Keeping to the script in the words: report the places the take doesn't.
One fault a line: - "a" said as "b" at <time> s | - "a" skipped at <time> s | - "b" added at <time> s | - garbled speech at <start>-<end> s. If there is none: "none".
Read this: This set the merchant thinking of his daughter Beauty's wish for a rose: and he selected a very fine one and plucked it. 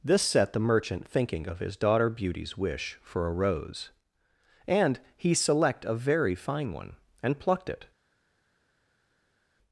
- "selected" said as "select" at 5.3 s